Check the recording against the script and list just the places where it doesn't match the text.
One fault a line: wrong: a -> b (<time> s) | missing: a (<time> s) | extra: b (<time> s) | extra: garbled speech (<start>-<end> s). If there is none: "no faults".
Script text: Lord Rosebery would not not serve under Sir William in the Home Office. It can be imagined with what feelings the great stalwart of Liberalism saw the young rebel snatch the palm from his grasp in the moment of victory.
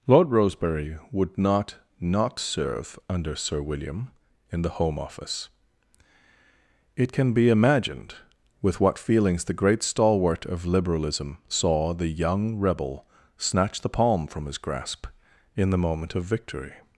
no faults